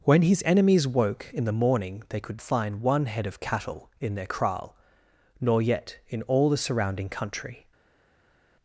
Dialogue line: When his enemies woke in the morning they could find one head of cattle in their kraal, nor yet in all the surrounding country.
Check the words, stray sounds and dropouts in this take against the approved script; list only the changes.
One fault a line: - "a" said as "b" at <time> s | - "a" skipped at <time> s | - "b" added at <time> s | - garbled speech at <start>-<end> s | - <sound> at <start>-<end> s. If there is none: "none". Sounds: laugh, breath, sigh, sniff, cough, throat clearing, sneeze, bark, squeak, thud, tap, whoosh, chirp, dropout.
none